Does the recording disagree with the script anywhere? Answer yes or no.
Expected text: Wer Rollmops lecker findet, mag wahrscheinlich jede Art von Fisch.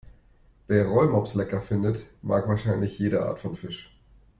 no